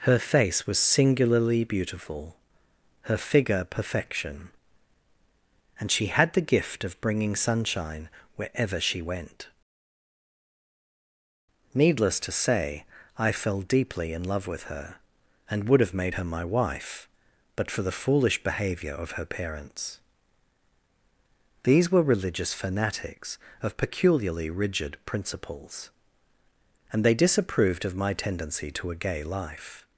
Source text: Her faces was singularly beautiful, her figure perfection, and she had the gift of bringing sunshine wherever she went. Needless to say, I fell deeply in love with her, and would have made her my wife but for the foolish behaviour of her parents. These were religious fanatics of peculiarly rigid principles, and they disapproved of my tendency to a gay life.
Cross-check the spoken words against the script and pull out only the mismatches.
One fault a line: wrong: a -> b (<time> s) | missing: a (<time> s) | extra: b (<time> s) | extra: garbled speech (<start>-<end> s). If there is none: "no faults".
wrong: faces -> face (0.2 s)